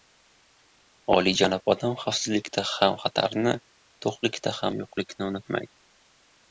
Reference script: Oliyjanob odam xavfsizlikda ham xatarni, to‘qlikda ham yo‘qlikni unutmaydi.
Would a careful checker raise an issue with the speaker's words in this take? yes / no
no